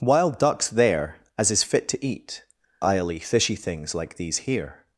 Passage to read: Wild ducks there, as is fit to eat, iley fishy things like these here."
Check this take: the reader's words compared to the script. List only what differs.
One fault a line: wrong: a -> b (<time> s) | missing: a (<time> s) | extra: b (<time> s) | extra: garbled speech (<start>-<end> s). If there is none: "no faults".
no faults